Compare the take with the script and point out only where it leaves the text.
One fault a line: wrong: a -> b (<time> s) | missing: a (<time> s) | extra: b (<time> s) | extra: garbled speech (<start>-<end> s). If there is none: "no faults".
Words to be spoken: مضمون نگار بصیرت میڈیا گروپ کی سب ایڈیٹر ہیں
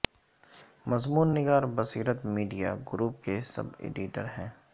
wrong: کی -> کے (3.2 s)